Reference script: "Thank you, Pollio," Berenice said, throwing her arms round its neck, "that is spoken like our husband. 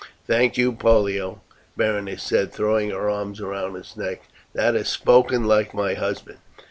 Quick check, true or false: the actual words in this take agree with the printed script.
false